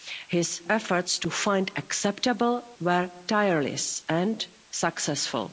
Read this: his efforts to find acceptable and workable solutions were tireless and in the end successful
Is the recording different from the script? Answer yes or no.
yes